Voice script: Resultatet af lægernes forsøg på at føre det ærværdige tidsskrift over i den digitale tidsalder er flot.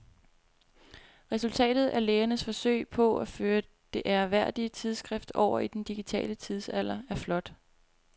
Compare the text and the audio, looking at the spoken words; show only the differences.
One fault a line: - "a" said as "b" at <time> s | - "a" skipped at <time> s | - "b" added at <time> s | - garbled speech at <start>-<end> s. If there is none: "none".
none